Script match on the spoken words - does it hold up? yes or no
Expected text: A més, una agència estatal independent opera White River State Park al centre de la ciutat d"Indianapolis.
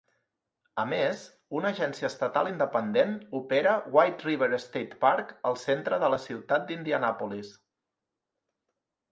yes